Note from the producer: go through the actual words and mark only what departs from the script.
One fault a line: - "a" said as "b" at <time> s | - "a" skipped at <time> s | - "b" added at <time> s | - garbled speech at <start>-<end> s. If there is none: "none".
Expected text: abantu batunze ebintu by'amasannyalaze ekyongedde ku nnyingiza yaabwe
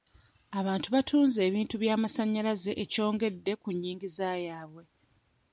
none